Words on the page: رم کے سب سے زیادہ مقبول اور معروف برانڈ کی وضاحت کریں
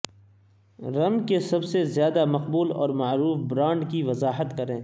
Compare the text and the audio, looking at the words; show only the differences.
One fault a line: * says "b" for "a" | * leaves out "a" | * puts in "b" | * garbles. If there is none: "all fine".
all fine